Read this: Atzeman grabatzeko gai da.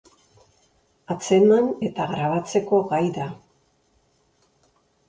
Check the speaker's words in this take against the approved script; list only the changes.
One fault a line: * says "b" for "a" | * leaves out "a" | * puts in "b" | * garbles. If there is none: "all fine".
* puts in "eta"